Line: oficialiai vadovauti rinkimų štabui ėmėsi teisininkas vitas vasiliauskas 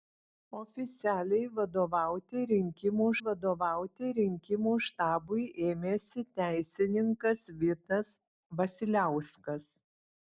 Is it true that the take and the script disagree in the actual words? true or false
true